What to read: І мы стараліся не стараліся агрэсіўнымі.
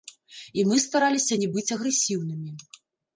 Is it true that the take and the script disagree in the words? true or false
true